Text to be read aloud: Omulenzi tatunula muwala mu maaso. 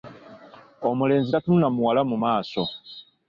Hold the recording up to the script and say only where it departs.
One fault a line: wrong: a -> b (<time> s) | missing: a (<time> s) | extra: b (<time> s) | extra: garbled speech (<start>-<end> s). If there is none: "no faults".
no faults